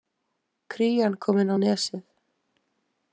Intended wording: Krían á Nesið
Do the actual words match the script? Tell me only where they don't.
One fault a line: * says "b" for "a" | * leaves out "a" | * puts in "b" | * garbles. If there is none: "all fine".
* puts in "komin"